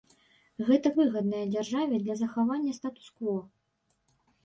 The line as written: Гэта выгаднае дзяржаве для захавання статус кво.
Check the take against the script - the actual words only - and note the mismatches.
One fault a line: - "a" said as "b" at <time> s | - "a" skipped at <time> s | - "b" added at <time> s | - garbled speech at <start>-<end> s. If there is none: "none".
none